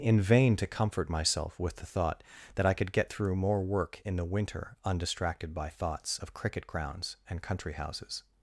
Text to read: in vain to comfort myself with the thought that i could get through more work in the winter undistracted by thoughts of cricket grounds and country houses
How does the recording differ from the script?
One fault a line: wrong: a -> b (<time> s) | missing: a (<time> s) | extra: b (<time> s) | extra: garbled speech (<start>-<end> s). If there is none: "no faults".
no faults